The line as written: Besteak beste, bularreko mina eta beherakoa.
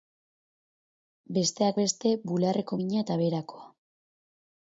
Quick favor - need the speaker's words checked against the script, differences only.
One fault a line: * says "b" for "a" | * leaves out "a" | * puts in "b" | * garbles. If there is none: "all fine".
all fine